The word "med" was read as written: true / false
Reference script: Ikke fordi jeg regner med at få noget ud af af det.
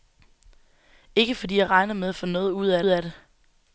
true